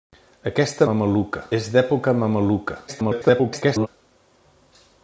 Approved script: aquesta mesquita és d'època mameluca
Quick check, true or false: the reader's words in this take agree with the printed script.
false